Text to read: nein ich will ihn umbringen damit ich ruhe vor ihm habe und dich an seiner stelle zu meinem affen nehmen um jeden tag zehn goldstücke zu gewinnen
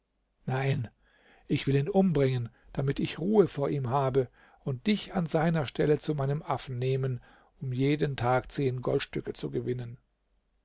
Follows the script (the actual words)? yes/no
yes